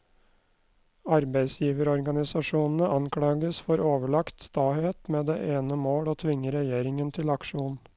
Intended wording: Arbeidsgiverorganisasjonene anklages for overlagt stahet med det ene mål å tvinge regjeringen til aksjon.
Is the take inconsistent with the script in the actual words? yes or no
no